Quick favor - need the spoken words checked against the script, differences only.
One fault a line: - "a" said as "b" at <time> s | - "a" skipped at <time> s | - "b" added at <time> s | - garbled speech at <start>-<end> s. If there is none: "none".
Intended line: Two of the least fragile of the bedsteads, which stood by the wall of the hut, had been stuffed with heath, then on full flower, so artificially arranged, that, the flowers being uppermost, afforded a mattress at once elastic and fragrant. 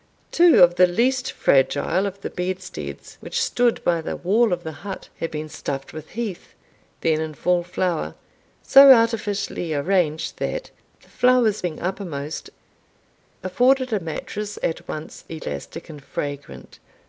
- "on" said as "in" at 7.2 s